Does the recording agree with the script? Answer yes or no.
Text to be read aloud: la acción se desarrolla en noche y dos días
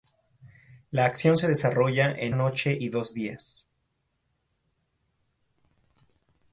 yes